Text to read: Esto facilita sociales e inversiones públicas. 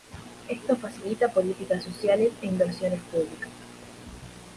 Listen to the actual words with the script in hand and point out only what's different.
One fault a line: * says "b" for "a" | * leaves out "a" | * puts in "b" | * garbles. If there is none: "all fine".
* puts in "políticas"